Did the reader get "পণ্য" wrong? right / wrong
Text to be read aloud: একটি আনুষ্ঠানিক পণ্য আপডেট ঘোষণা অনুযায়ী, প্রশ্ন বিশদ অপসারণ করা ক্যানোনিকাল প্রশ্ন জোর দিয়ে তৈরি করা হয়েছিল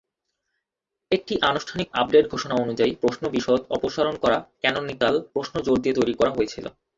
wrong